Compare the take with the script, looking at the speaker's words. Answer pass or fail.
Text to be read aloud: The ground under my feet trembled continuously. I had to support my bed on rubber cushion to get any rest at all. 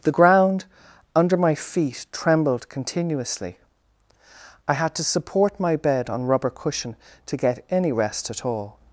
pass